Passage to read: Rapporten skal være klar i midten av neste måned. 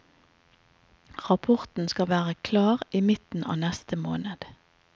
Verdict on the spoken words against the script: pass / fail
pass